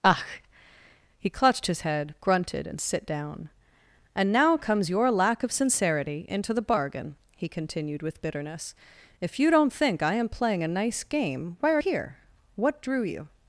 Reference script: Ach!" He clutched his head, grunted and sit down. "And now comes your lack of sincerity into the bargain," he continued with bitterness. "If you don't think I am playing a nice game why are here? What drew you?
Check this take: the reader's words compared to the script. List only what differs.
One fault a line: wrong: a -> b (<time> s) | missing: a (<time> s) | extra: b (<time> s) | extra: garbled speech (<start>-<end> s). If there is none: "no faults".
no faults